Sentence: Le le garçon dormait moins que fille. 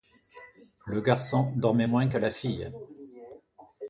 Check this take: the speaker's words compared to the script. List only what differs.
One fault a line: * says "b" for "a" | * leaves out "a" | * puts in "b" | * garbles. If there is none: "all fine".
* leaves out "le"
* puts in "la"